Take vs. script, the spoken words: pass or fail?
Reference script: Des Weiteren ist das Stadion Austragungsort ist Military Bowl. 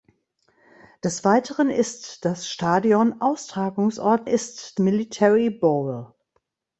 pass